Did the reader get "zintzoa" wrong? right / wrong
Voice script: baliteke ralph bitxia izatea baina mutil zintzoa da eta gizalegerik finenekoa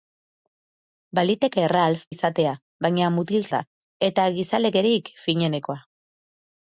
wrong